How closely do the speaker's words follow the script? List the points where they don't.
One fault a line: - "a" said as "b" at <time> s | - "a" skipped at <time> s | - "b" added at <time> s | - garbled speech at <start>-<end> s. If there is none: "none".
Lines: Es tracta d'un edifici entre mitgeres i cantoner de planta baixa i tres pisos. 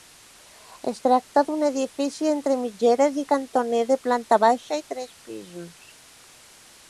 none